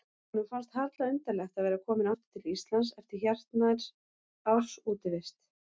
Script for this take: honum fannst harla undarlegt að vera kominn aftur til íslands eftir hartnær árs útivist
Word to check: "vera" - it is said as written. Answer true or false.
true